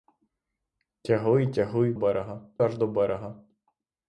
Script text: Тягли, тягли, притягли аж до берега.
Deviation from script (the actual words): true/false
true